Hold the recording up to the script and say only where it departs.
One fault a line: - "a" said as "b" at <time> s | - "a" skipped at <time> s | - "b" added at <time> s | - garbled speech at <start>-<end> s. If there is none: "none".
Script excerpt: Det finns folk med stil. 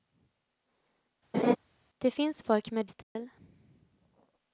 none